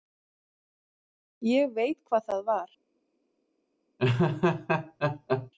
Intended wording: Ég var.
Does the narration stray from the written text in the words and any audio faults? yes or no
yes